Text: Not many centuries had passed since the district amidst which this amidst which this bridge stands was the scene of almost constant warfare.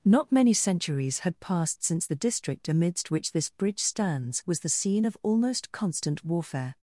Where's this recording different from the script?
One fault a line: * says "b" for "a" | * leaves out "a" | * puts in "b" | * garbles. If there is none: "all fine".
* leaves out "amidst which this"